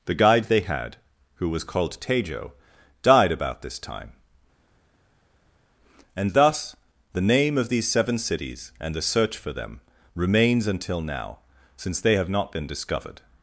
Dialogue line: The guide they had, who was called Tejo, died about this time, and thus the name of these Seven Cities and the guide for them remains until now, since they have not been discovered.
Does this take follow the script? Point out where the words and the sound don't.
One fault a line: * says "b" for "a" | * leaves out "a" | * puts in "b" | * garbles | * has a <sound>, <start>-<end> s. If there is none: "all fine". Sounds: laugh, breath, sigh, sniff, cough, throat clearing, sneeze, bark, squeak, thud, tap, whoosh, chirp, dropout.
* says "search" for "guide"